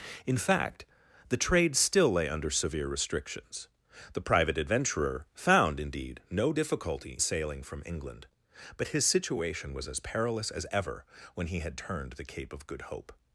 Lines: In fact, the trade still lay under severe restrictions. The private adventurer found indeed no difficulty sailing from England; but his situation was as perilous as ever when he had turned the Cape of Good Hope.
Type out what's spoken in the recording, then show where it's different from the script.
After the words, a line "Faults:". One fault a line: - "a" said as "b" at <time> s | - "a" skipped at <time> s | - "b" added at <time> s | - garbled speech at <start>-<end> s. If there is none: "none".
In fact, the trade still lay under severe restrictions. The private adventurer found indeed no difficulty sailing from England; but his situation was as perilous as ever when he had turned the Cape of Good Hope.
Faults:
none